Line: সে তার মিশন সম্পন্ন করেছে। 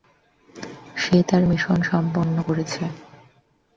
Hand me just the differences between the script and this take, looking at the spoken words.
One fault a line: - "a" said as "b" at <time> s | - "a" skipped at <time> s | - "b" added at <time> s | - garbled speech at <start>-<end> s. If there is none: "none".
none